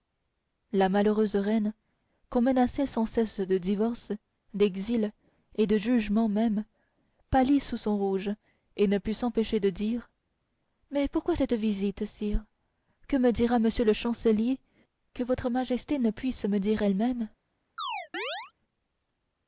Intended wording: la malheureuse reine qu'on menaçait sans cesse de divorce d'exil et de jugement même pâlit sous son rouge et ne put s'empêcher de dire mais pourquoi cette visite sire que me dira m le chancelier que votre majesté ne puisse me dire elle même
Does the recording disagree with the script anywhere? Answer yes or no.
no